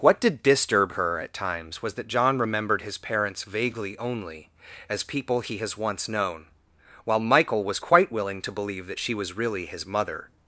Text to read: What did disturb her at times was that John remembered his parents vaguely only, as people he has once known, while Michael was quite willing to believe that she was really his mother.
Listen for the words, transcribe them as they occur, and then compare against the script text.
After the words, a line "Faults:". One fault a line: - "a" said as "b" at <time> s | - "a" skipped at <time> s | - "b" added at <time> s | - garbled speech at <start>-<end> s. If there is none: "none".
What did disturb her at times was that John remembered his parents vaguely only, as people he has once known, while Michael was quite willing to believe that she was really his mother.
Faults:
none